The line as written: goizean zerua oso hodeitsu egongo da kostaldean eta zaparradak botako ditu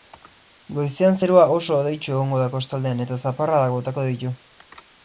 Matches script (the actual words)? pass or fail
pass